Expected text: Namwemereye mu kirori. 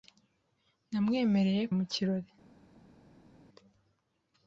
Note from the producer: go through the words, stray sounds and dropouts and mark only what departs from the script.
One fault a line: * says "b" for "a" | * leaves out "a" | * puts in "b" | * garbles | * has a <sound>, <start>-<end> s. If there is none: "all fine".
all fine